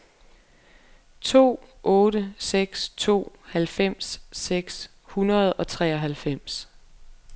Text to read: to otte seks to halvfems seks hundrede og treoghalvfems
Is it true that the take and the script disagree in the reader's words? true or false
false